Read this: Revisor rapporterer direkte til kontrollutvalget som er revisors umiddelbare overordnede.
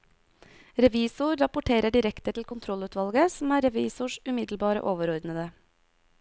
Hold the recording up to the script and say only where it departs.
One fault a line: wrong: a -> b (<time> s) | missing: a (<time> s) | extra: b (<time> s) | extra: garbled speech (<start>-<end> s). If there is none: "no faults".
no faults